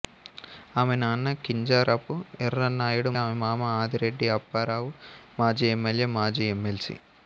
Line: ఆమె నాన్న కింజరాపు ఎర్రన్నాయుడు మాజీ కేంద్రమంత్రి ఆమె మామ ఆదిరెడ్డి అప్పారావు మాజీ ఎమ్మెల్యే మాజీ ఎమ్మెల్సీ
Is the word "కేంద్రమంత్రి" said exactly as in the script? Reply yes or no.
no